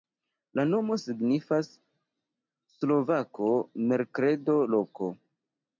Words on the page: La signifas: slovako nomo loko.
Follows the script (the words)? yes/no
no